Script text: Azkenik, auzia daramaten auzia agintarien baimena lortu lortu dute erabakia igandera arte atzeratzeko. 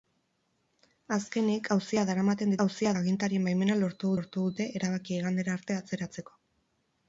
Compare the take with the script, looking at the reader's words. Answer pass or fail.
pass